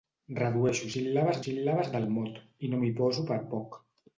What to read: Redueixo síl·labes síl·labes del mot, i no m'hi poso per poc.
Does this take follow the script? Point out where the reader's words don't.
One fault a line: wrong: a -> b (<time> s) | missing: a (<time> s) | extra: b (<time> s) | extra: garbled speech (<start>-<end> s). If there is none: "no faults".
no faults